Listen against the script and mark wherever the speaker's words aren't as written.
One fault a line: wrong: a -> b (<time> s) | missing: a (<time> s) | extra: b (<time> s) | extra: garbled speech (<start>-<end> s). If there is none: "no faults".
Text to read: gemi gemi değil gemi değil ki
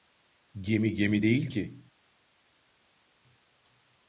missing: gemi değil (1.5 s)